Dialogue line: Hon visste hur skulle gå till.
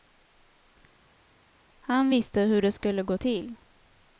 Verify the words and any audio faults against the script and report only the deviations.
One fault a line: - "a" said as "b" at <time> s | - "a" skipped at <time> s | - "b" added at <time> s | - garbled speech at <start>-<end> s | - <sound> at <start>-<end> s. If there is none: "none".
- "Hon" said as "Han" at 1.8 s
- "det" added at 2.6 s